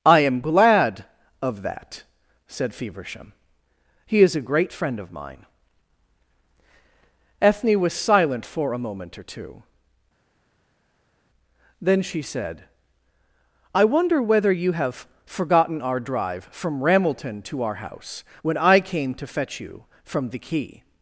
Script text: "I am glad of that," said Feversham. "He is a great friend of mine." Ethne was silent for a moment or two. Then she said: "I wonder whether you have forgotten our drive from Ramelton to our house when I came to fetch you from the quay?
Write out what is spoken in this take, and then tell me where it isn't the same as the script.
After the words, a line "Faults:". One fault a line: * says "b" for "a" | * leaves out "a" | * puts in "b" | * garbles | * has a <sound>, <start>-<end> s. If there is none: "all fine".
"I am glad of that," said Feversham. "He is a great friend of mine." Ethne was silent for a moment or two. Then she said: "I wonder whether you have forgotten our drive from Ramelton to our house when I came to fetch you from the quay?
Faults:
all fine